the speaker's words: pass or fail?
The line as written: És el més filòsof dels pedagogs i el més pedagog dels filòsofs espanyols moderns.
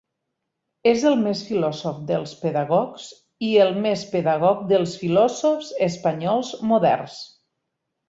pass